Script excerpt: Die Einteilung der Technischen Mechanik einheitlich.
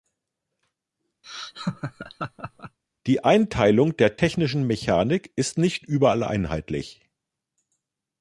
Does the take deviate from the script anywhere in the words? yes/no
yes